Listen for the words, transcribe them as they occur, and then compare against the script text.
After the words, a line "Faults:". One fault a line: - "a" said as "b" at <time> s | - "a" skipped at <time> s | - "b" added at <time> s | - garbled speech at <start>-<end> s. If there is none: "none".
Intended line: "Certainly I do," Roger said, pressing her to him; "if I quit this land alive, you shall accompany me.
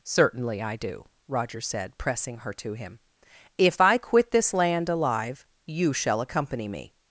"Certainly I do," Roger said, pressing her to him; "if I quit this land alive, you shall accompany me.
Faults:
none